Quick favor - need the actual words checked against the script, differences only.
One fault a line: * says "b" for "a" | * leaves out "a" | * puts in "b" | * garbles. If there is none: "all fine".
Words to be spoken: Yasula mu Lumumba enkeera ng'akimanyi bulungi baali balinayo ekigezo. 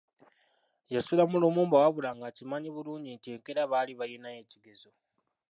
* says "wabula" for "enkeera"
* puts in "nti enkeera"